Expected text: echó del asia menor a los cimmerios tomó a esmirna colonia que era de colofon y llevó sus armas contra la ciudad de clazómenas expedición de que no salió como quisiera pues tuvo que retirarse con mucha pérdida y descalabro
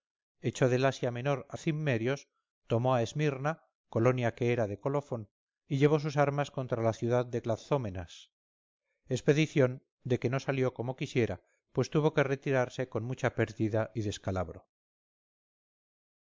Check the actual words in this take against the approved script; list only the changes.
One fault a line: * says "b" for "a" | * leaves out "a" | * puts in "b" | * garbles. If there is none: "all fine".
* leaves out "los"